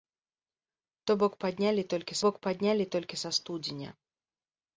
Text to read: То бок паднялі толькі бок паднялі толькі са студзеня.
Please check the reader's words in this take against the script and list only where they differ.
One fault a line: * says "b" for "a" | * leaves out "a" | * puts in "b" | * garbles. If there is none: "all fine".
all fine